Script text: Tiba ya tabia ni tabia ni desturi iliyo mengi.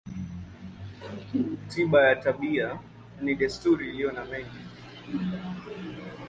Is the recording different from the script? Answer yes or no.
yes